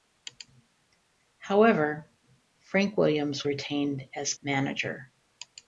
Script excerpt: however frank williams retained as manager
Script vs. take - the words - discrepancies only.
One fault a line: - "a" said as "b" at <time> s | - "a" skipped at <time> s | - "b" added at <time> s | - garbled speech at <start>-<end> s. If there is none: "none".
none